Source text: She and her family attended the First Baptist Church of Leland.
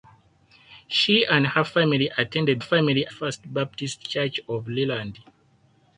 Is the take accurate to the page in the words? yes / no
no